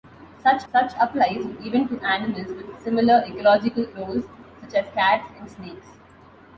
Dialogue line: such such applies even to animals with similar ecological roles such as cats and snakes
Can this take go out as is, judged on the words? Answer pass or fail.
pass